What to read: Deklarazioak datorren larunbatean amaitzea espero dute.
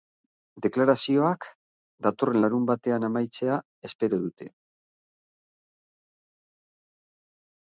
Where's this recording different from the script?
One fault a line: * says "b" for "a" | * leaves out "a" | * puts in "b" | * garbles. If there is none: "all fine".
all fine